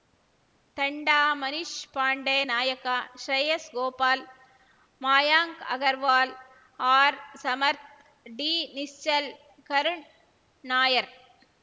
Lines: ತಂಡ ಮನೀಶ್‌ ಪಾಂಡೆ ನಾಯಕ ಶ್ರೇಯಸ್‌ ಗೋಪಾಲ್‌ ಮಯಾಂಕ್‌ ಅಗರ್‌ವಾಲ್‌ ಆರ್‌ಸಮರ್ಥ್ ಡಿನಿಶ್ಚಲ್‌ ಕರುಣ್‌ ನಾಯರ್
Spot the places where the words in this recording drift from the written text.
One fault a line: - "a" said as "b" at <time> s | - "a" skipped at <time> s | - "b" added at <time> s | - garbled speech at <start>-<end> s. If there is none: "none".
none